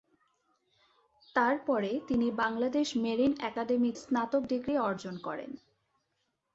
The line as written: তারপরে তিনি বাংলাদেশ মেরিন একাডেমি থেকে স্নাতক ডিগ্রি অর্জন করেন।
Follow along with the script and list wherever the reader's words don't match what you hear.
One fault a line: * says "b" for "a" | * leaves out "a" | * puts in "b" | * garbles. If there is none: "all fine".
* leaves out "থেকে"